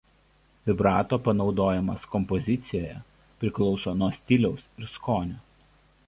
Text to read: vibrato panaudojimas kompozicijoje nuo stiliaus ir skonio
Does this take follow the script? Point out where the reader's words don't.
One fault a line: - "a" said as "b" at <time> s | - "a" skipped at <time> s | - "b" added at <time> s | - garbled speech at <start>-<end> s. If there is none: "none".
- "priklauso" added at 3.4 s